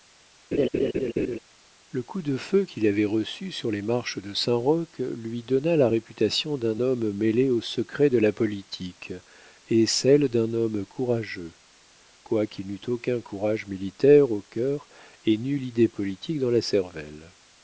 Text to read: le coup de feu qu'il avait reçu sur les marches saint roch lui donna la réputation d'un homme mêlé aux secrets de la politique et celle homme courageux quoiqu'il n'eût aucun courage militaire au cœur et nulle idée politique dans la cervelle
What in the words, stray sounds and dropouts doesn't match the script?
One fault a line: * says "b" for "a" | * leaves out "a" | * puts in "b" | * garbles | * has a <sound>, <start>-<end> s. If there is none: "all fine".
* has a laugh, 0.5-1.4 s
* puts in "de"
* puts in "d'un"